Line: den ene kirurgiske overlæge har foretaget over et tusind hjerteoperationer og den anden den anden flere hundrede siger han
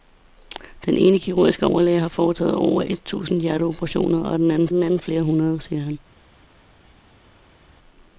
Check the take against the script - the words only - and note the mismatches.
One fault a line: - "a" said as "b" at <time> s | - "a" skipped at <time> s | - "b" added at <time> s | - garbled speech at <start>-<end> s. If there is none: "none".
none